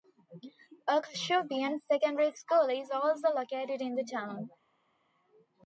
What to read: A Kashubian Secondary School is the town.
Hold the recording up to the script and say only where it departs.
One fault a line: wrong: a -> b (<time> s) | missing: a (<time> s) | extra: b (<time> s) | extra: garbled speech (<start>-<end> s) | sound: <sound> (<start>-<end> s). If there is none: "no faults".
extra: also located in (2.9 s)